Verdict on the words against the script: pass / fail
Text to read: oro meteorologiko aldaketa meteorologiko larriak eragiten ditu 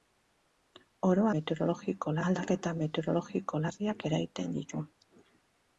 pass